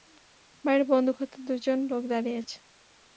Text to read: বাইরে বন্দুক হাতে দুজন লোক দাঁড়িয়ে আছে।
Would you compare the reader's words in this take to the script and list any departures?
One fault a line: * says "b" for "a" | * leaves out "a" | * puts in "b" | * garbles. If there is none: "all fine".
all fine